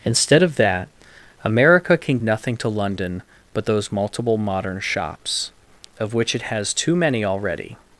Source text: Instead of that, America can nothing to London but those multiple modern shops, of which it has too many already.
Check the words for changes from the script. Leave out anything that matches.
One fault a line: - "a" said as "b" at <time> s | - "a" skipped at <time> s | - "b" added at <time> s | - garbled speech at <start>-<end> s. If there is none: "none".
none